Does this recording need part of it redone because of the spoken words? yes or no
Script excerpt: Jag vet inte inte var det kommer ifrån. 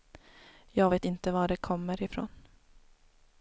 yes